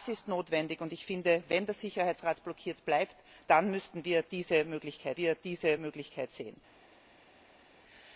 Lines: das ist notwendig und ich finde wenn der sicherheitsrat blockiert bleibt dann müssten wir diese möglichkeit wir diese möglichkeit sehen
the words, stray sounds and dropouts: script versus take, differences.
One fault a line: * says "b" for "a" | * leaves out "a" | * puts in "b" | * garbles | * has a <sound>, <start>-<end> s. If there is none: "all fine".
all fine